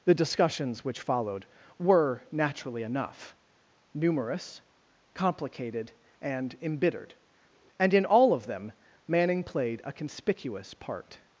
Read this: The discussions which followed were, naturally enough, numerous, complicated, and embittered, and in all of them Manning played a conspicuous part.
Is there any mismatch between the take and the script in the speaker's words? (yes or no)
no